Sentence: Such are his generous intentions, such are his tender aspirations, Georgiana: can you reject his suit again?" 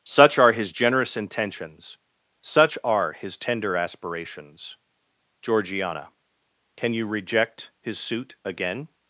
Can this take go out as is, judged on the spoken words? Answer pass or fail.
pass